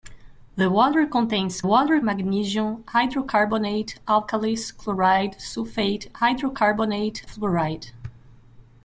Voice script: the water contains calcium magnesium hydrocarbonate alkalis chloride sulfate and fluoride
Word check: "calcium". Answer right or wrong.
wrong